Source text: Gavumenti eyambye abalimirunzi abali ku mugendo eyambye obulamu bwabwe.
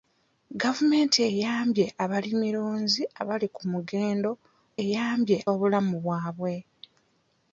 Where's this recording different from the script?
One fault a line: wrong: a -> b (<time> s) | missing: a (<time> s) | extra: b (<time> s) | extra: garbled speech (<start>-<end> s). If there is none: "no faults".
no faults